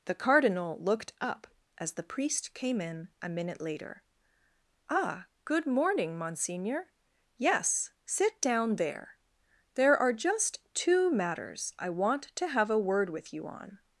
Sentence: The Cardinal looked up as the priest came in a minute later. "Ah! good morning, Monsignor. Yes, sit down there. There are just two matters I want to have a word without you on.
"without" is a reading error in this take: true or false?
true